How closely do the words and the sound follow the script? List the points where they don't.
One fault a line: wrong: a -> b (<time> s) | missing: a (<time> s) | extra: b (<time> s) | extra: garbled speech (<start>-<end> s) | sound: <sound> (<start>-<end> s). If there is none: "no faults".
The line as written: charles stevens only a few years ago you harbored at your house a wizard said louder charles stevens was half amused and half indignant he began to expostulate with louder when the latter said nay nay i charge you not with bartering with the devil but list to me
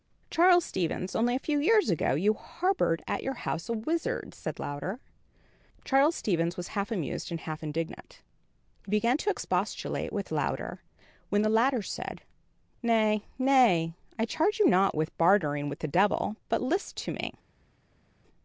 no faults